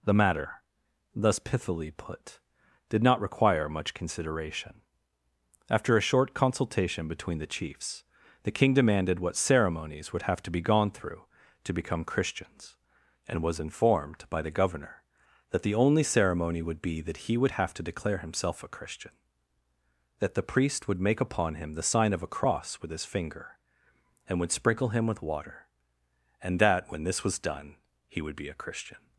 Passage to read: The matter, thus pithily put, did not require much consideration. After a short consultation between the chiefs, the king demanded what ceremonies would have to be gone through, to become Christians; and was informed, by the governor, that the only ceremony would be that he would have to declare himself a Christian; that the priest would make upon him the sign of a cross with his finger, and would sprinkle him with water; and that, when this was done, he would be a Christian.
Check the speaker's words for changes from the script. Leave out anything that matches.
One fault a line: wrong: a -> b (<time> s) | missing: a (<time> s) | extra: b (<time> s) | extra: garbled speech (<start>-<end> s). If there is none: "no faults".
no faults